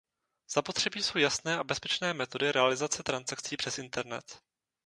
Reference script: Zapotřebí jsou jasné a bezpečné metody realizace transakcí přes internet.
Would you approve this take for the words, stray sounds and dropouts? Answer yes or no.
yes